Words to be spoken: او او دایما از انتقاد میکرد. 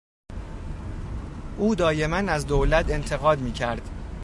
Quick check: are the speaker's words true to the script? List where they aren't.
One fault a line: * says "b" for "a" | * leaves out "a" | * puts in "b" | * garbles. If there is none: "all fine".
* leaves out "او"
* puts in "دولت"